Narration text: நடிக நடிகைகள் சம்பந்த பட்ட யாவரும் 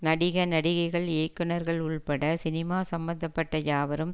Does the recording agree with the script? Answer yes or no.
no